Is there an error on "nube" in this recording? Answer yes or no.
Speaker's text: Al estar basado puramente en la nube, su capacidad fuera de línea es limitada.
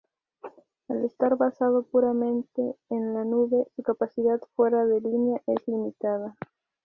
no